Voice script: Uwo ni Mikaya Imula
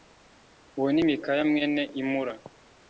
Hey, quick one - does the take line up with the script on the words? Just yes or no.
no